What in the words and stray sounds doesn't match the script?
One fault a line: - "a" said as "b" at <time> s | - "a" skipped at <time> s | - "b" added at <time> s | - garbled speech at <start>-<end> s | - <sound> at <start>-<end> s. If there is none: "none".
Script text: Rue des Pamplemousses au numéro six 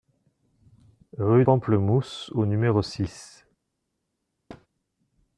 - "des" skipped at 1.4 s
- thud at 4.5-4.7 s